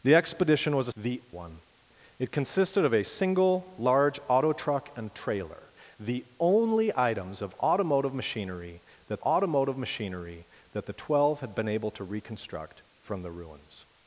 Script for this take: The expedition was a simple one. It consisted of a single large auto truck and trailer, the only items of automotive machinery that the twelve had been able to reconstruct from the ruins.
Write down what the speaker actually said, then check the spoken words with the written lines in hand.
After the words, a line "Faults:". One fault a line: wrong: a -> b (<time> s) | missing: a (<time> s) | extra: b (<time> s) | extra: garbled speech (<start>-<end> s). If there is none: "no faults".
The expedition was a the one. It consisted of a single large auto truck and trailer, the only items of automotive machinery that automotive machinery that the twelve had been able to reconstruct from the ruins.
Faults:
wrong: simple -> the (0.9 s)
extra: automotive machinery that (9.2 s)